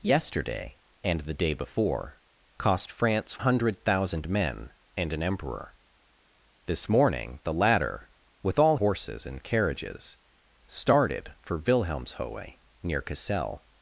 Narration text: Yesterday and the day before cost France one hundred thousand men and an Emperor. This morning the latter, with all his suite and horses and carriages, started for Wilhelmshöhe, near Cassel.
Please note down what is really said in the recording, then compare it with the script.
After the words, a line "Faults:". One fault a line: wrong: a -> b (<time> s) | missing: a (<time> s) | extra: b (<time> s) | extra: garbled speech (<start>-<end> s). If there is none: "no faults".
Yesterday and the day before cost France hundred thousand men and an Emperor. This morning the latter, with all horses and carriages, started for Wilhelmshöhe, near Cassel.
Faults:
missing: one (3.4 s)
missing: his suite and (8.8 s)